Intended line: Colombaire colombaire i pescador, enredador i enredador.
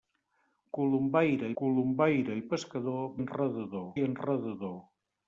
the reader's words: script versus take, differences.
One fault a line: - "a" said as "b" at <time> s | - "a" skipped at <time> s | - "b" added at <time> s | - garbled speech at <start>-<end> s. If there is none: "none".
none